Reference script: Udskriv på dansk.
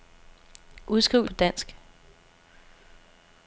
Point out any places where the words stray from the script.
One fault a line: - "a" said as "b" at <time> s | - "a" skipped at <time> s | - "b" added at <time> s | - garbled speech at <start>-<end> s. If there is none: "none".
none